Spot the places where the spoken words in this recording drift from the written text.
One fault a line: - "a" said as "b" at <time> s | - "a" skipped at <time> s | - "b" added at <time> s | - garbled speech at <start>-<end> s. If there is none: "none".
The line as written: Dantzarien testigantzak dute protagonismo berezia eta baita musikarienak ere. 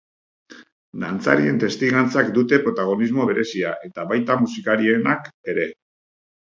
none